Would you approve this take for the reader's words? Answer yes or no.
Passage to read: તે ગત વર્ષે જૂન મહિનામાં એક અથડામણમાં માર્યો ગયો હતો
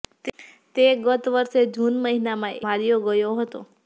no